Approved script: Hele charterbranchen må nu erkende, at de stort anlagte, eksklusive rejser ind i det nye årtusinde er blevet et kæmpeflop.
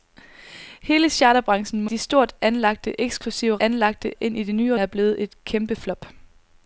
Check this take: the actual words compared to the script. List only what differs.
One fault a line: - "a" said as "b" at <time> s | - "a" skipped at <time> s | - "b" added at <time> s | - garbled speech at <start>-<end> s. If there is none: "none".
- "nu erkende at" skipped at 1.9 s
- "rejser" said as "anlagte" at 3.6 s
- "årtusinde" skipped at 4.7 s